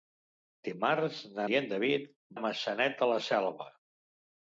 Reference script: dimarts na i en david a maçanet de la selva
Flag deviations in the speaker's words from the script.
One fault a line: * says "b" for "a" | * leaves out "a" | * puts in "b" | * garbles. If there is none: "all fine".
all fine